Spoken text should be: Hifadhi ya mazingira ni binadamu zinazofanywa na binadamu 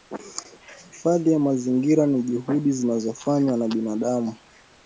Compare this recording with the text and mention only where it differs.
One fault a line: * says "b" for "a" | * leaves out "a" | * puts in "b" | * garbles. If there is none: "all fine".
* says "juhudi" for "binadamu"